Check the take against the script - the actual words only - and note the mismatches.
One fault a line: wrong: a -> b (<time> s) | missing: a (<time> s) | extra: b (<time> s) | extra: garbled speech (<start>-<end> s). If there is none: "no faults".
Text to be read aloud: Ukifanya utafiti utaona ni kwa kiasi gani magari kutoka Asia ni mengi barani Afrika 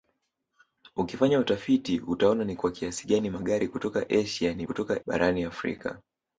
wrong: mengi -> kutoka (4.6 s)